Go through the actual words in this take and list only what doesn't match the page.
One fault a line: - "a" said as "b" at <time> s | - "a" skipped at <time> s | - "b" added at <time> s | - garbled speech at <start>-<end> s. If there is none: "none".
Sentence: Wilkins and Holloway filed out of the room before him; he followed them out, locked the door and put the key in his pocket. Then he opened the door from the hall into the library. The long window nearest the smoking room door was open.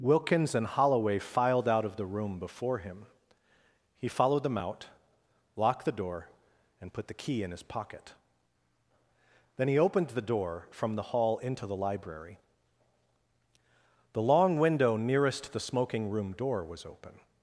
none